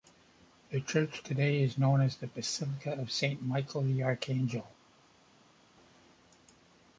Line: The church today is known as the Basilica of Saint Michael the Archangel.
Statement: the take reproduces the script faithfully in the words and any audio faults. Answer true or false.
true